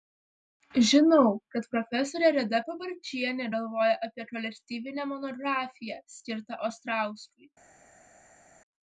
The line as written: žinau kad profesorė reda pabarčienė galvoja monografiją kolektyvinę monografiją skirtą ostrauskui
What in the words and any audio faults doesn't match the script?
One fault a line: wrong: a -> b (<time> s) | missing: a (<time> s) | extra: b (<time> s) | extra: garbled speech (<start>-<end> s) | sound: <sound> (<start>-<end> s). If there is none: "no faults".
wrong: monografiją -> apie (4.1 s)